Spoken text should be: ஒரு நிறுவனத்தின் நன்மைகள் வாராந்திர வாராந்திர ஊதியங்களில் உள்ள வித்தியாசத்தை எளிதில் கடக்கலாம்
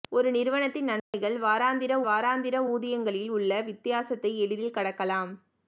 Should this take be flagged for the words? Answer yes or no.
no